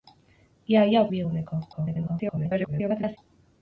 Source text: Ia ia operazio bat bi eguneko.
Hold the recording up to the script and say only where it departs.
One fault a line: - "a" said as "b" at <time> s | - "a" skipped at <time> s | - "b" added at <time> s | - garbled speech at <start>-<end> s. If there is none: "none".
- "operazio bat" skipped at 1.1 s
- garbled speech at 1.7-3.2 s